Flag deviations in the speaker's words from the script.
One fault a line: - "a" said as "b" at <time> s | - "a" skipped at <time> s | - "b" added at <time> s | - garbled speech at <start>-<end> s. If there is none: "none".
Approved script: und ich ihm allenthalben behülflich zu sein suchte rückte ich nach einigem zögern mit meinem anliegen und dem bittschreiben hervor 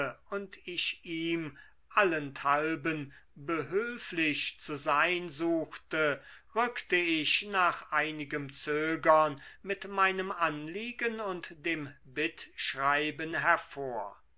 none